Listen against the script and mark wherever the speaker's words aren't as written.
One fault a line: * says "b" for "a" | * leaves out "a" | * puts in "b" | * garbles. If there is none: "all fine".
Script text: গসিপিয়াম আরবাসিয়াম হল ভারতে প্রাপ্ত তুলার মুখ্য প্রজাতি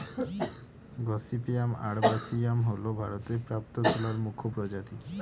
all fine